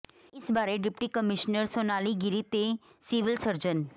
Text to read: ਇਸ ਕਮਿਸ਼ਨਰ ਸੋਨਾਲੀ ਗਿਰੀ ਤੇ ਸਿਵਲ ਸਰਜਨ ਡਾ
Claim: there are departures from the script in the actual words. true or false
true